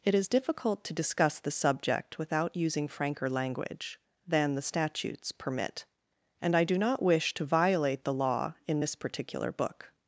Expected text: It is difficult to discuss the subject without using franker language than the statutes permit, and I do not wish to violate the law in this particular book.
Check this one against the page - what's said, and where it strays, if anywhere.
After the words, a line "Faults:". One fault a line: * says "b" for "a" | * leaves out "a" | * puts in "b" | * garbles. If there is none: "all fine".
It is difficult to discuss the subject without using franker language than the statutes permit, and I do not wish to violate the law in this particular book.
Faults:
all fine